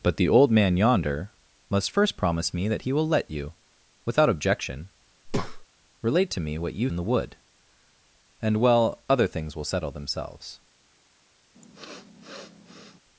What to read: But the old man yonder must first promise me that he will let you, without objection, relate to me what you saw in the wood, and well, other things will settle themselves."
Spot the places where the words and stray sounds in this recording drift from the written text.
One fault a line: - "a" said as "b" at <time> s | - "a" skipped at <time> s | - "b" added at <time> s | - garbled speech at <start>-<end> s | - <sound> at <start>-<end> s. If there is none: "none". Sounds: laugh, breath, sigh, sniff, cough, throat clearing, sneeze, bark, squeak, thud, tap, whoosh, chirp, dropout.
- breath at 5.2-5.7 s
- "saw" skipped at 6.9 s
- sniff at 11.5-13.0 s